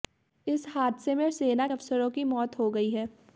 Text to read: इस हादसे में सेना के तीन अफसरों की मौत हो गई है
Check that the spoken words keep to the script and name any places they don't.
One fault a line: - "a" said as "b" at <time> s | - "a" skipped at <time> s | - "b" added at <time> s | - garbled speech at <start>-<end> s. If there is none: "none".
- "के तीन" skipped at 1.7 s